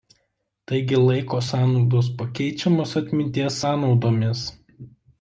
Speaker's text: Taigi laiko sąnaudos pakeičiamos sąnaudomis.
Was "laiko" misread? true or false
false